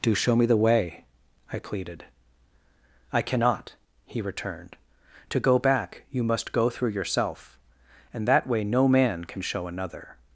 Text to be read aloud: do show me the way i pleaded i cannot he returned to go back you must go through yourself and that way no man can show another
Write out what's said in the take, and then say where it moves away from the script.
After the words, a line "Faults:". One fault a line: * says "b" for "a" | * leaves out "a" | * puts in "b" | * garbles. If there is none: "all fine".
do show me the way i pleaded i cannot he returned to go back you must go through yourself and that way no man can show another
Faults:
all fine